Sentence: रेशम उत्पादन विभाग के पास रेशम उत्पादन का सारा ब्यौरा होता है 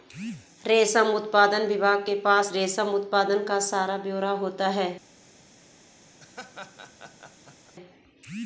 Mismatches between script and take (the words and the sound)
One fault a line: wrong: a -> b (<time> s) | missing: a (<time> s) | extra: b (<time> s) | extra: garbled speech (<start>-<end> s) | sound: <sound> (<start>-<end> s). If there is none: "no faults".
sound: laugh (6.2-7.7 s)